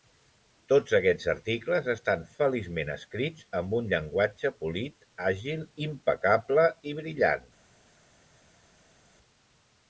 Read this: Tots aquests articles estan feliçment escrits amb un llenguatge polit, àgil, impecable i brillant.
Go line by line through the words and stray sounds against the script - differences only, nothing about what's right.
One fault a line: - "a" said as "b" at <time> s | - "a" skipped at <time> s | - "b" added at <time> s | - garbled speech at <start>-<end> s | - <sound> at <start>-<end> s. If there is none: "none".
none